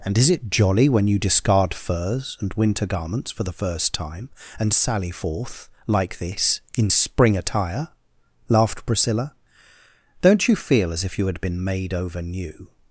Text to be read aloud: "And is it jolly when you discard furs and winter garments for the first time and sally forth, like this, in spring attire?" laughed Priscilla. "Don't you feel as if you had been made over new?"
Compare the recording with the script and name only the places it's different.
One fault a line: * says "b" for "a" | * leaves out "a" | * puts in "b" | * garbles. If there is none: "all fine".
all fine